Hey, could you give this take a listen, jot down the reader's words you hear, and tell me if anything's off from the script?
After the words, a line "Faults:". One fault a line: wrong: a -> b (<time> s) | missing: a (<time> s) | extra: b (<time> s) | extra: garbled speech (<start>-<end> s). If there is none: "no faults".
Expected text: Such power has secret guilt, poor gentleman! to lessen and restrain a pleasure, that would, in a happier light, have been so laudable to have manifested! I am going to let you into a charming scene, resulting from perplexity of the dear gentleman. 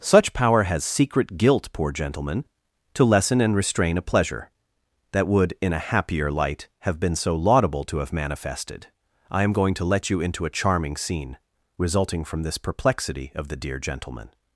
Such power has secret guilt, poor gentleman! to lessen and restrain a pleasure, that would, in a happier light, have been so laudable to have manifested! I am going to let you into a charming scene, resulting from this perplexity of the dear gentleman.
Faults:
extra: this (12.4 s)